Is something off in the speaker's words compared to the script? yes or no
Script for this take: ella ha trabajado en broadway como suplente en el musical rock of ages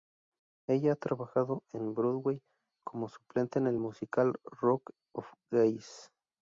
no